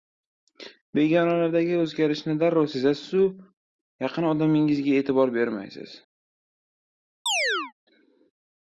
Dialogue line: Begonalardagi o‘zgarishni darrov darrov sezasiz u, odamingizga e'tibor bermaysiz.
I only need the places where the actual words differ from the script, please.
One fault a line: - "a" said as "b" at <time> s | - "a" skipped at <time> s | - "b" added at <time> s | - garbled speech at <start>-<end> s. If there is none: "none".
- "darrov" skipped at 2.6 s
- "yaqin" added at 4.0 s